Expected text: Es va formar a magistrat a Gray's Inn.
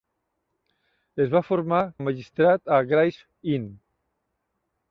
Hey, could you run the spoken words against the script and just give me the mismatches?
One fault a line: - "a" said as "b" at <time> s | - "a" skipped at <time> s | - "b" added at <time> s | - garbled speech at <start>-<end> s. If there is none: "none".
none